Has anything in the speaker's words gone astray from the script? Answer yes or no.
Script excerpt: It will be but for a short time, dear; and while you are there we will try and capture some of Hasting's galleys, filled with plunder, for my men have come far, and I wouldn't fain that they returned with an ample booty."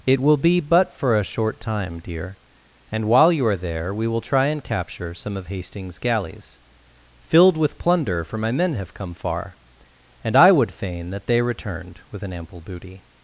yes